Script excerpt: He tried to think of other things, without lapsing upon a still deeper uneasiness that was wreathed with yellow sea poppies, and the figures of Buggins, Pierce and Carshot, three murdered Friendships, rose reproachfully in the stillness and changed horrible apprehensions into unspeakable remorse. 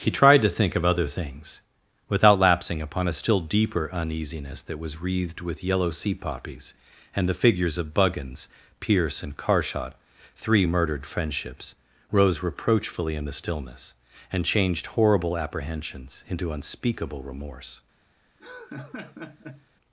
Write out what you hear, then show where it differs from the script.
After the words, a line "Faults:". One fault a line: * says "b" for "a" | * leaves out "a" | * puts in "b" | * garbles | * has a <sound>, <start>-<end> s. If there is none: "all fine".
He tried to think of other things, without lapsing upon a still deeper uneasiness that was wreathed with yellow sea poppies, and the figures of Buggins, Pierce and Carshot, three murdered Friendships, rose reproachfully in the stillness and changed horrible apprehensions into unspeakable remorse.
Faults:
* has a laugh, 18.4-19.7 s